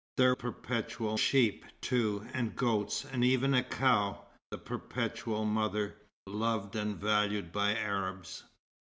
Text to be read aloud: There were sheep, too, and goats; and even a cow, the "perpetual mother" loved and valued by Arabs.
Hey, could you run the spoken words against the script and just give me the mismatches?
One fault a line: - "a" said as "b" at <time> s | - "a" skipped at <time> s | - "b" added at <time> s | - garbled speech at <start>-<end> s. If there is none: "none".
- "were" said as "perpetual" at 0.3 s